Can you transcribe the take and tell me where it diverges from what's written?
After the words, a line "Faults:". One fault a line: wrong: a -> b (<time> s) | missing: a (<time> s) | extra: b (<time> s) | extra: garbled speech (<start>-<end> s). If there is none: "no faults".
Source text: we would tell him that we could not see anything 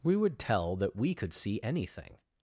we would tell that we could see anything
Faults:
missing: him (0.8 s)
missing: not (1.3 s)